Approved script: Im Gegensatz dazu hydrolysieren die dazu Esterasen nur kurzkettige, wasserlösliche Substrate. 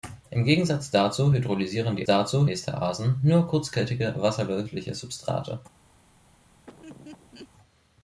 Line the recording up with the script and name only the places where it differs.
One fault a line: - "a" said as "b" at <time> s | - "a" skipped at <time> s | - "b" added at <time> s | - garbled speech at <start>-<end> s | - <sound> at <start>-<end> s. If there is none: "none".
- laugh at 6.7-7.5 s